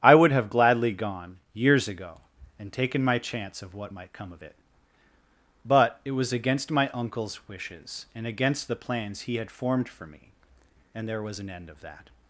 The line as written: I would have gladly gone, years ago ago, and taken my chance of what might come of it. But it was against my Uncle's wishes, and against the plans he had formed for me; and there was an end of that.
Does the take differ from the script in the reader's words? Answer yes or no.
yes